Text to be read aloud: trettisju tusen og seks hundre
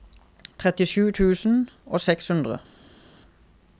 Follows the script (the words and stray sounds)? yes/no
yes